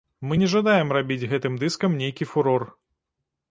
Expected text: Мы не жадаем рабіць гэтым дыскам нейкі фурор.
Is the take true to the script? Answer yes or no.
yes